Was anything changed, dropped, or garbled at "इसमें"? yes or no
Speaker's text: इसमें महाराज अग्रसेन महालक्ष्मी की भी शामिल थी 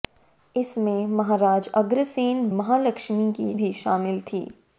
no